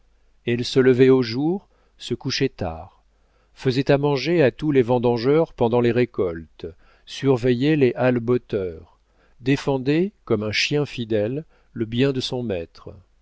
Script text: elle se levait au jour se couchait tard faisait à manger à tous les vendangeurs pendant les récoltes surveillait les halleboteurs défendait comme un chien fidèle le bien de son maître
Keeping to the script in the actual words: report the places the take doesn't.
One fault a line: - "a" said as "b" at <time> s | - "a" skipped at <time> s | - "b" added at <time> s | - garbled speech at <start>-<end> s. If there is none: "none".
none